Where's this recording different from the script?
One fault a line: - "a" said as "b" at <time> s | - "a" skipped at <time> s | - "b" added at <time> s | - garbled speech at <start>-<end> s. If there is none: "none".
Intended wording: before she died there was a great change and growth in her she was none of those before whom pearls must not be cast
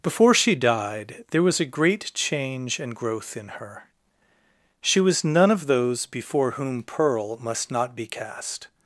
- "pearls" said as "pearl" at 6.8 s